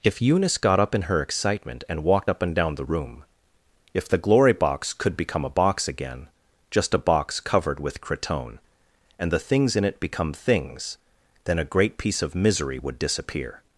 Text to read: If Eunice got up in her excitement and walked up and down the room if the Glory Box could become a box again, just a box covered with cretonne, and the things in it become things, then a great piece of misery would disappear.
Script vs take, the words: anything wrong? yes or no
no